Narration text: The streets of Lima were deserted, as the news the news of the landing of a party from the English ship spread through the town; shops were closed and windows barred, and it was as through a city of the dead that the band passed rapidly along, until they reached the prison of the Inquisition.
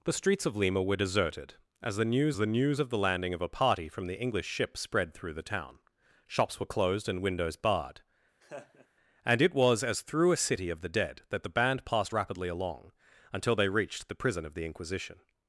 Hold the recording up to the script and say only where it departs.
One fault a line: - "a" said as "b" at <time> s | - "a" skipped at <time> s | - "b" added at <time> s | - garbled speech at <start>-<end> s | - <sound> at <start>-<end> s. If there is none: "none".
- laugh at 8.4-8.9 s